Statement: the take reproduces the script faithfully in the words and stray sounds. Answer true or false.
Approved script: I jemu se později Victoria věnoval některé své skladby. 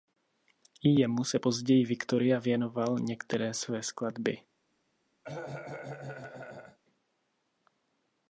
false